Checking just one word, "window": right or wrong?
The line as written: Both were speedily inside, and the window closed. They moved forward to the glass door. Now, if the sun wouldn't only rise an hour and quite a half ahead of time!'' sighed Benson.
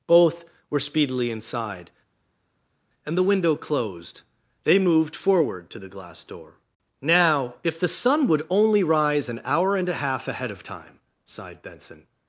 right